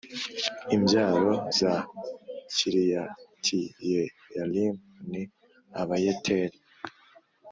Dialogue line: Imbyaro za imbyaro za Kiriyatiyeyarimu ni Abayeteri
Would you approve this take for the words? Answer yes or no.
no